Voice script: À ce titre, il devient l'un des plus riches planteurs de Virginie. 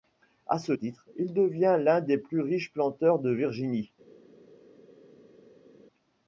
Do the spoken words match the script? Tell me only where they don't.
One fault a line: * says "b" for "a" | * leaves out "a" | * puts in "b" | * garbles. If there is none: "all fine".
all fine